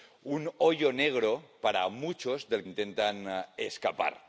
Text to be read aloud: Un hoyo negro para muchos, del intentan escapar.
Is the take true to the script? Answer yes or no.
yes